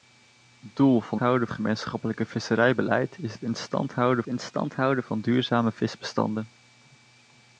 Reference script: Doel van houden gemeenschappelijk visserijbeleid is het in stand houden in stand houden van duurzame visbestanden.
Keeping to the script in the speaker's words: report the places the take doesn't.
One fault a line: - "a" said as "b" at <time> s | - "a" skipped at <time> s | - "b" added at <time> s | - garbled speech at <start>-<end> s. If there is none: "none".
none